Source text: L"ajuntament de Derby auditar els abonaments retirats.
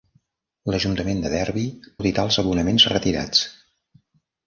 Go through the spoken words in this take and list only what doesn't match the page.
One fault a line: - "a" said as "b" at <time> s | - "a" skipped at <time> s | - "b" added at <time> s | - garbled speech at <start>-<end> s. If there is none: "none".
none